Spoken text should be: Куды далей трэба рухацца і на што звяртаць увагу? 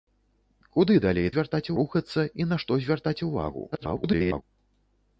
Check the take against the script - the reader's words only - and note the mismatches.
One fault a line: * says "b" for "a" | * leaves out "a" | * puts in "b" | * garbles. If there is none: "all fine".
* says "звяртаць" for "трэба"
* garbles